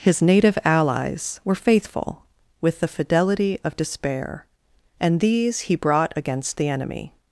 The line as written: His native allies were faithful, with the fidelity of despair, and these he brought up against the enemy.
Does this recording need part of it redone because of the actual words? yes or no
yes